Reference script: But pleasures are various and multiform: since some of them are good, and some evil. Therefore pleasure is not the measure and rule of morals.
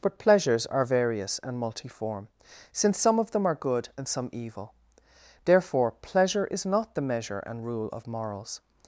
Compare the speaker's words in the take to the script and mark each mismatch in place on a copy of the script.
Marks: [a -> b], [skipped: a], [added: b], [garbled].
But pleasures are various and multiform: since some of them are good, and some evil. Therefore pleasure is not the measure and rule of morals.